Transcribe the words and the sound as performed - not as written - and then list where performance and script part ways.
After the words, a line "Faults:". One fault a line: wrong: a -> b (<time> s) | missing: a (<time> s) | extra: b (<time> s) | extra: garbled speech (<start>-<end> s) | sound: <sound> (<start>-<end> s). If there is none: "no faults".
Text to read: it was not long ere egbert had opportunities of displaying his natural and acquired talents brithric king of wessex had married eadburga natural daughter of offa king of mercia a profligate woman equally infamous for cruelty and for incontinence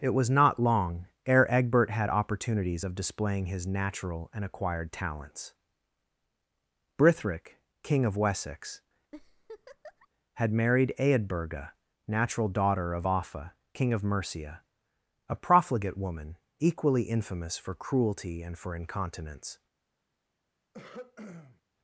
it was not long ere egbert had opportunities of displaying his natural and acquired talents brithric king of wessex had married eadburga natural daughter of offa king of mercia a profligate woman equally infamous for cruelty and for incontinence
Faults:
sound: laugh (9.1-10.1 s)
sound: throat clearing (20.7-21.6 s)